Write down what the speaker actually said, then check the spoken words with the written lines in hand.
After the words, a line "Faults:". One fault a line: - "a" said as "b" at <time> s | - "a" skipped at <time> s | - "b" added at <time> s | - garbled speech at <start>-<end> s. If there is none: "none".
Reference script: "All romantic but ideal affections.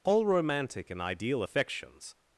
"All romantic and ideal affections.
Faults:
- "but" said as "and" at 0.9 s